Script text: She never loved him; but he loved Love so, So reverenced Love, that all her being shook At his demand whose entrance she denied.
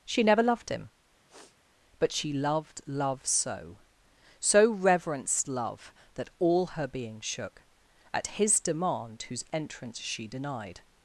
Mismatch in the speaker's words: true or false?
true